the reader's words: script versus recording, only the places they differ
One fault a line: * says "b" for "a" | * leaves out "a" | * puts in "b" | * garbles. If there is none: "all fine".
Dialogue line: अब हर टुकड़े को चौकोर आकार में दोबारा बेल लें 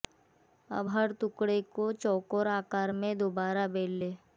all fine